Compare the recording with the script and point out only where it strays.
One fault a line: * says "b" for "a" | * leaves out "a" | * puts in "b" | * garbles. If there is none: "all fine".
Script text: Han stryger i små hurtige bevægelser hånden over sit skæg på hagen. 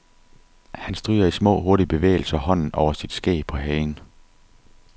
all fine